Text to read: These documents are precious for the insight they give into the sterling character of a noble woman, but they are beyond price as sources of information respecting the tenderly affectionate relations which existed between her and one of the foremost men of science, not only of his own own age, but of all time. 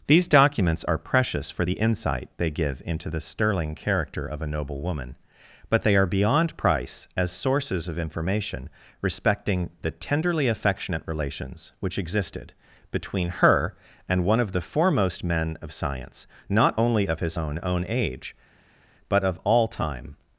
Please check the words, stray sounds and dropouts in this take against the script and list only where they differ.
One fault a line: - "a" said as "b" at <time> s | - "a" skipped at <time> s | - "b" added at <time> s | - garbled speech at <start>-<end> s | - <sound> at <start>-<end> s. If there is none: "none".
none